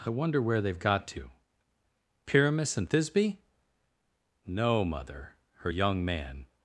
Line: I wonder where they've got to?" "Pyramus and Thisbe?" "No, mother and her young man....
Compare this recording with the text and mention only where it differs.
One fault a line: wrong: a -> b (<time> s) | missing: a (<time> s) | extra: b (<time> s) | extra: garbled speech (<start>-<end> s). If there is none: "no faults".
missing: and (5.4 s)